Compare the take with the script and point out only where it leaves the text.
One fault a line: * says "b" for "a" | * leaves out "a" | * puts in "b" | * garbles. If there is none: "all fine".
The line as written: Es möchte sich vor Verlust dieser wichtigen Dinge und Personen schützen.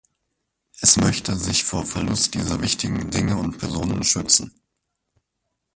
all fine